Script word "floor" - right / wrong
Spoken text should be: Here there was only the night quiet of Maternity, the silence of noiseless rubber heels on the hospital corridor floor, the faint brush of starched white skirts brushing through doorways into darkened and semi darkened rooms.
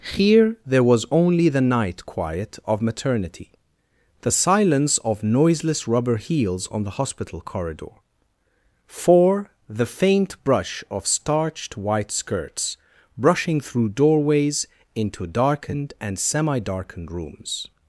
wrong